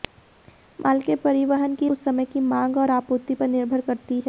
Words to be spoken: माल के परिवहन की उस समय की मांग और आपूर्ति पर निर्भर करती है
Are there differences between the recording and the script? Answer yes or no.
no